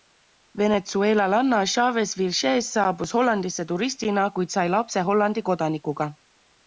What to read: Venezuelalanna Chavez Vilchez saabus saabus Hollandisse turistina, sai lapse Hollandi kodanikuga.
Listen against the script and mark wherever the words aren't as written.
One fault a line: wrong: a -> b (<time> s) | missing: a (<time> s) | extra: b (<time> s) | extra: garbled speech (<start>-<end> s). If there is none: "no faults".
missing: saabus (3.1 s)
extra: kuid (4.4 s)